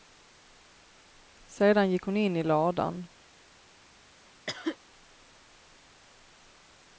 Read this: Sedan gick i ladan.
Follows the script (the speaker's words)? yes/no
no